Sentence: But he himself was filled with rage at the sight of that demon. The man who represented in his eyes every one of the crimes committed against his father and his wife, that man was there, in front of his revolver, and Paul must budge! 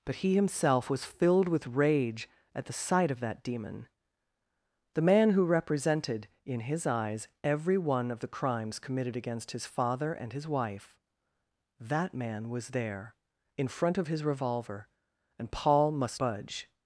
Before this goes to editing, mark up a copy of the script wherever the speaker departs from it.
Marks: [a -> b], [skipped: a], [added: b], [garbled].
But he himself was filled with rage at the sight of that demon. The man who represented in his eyes every one of the crimes committed against his father and his wife, that man was there, in front of his revolver, and Paul must budge!